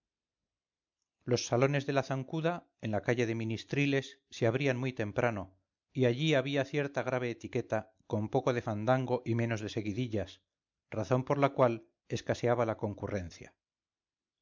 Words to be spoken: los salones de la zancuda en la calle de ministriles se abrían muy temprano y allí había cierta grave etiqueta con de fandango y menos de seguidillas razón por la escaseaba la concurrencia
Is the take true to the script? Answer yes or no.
no